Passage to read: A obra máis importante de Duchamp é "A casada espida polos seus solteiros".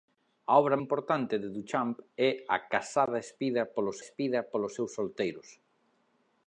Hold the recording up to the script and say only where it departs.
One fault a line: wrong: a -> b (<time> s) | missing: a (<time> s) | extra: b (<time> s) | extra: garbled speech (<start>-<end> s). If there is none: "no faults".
missing: máis (0.8 s)
extra: espida polos (4.0 s)